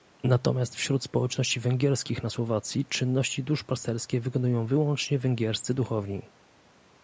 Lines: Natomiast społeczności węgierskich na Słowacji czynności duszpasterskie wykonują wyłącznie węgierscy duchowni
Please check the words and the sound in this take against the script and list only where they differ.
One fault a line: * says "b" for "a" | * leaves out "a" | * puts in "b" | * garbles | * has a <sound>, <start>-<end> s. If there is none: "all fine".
* puts in "wśród"